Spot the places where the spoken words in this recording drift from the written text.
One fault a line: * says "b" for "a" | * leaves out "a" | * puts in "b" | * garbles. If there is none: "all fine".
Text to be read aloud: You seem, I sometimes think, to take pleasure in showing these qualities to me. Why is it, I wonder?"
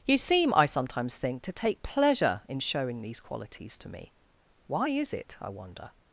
all fine